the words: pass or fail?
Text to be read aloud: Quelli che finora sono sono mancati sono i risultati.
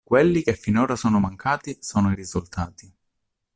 fail